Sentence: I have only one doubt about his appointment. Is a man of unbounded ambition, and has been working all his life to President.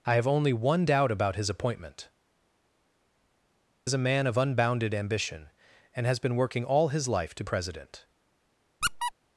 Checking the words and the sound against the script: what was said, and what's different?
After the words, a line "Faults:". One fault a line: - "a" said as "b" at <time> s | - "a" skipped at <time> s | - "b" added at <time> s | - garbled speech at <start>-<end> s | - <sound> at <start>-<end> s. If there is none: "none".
I have only one doubt about his appointment. Is a man of unbounded ambition, and has been working all his life to President.
Faults:
- squeak at 8.8-9.1 s